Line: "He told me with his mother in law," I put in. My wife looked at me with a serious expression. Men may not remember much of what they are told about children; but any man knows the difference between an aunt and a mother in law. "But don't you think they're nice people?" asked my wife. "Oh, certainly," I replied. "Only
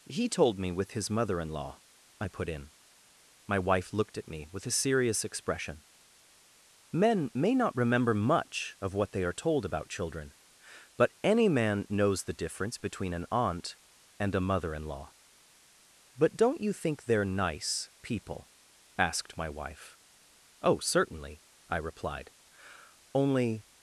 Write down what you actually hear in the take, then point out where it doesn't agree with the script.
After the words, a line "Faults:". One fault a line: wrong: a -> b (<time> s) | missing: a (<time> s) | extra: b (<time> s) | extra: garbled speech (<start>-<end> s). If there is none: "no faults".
"He told me with his mother in law," I put in. My wife looked at me with a serious expression. Men may not remember much of what they are told about children; but any man knows the difference between an aunt and a mother in law. "But don't you think they're nice people?" asked my wife. "Oh, certainly," I replied. "Only
Faults:
no faults